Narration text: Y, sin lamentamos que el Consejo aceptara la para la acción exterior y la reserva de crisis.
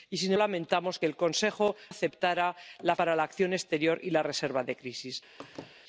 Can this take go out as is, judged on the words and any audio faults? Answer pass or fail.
fail